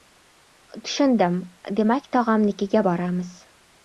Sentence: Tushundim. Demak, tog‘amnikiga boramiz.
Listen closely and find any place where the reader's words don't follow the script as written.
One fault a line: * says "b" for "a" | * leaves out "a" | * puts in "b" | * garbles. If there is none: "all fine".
all fine